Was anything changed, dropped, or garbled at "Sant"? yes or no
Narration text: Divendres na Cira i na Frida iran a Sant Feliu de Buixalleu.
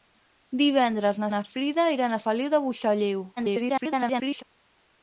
yes